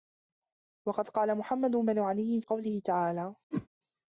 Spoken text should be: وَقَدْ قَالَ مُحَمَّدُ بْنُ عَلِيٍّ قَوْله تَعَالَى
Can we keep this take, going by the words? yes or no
yes